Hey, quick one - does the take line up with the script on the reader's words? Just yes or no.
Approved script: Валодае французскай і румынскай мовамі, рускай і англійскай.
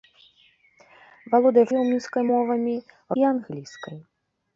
no